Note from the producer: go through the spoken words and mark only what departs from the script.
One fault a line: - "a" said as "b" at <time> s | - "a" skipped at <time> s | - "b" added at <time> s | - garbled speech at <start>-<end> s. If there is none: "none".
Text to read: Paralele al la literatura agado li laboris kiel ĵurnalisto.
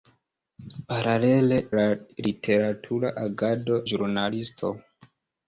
- "al" skipped at 1.6 s
- "li laboris kiel" skipped at 3.8 s